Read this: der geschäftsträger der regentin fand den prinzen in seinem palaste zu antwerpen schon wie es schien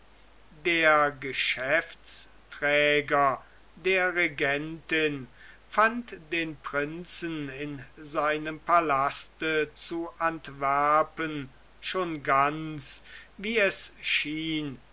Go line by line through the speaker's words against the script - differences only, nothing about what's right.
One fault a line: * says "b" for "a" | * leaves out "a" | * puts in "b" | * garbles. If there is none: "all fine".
* puts in "ganz"